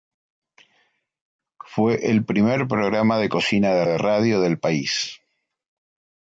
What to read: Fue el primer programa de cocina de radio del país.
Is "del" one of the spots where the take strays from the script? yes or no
no